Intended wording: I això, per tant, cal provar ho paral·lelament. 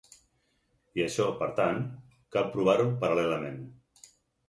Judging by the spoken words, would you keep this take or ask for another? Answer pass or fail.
pass